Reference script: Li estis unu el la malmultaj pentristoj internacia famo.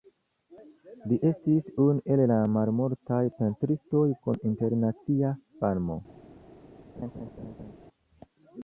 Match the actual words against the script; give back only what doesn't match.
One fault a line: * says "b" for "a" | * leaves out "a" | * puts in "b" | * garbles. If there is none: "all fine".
* puts in "kun"